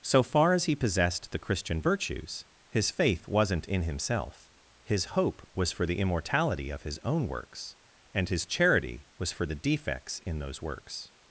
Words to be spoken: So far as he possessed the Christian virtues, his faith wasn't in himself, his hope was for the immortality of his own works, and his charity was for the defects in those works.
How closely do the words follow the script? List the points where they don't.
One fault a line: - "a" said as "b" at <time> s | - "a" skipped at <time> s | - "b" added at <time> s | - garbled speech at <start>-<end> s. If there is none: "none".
none